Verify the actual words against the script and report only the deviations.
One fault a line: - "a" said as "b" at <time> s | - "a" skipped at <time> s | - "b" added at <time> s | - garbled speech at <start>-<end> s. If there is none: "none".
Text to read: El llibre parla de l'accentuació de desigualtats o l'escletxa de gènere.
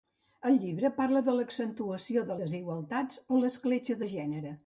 none